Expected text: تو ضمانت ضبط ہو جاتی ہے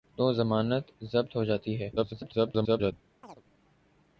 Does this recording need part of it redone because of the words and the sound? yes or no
yes